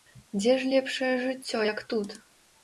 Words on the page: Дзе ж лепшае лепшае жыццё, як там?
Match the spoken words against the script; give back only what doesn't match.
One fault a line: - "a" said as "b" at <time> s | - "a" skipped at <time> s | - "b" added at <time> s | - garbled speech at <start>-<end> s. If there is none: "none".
- "лепшае" skipped at 1.1 s
- "там" said as "тут" at 1.9 s